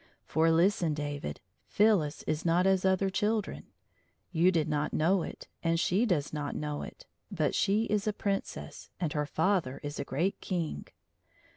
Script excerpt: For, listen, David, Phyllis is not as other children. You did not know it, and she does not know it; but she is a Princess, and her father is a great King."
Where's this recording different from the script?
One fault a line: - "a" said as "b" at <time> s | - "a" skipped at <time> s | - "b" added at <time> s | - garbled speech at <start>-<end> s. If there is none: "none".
none